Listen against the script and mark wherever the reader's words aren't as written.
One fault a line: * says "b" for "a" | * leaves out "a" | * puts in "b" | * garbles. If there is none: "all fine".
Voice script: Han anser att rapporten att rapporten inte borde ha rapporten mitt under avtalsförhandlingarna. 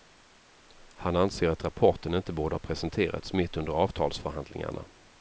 * leaves out "att rapporten"
* says "presenterats" for "rapporten"